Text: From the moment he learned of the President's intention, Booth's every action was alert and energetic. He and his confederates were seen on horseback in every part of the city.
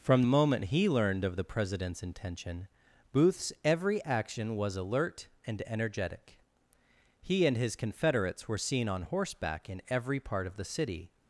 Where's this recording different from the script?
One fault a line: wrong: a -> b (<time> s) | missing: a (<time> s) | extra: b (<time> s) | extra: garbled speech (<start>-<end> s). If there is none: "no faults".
missing: the (0.2 s)